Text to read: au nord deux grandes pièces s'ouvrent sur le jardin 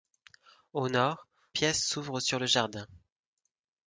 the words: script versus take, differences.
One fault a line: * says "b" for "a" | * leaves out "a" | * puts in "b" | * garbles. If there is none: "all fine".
* leaves out "deux grandes"